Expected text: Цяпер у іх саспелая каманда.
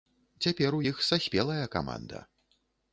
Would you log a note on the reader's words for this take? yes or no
no